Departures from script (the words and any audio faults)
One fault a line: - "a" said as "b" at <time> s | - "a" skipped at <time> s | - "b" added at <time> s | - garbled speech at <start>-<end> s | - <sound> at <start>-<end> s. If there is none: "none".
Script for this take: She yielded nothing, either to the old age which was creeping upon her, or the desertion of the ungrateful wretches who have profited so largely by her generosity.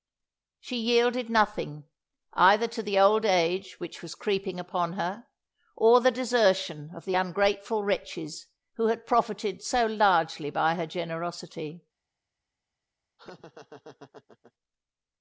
- "have" said as "had" at 8.9 s
- laugh at 13.2-14.5 s